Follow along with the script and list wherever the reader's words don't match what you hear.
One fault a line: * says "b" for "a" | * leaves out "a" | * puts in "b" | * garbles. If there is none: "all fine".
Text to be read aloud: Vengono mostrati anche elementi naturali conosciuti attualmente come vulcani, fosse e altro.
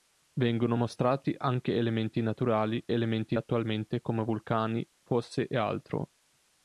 * says "elementi" for "conosciuti"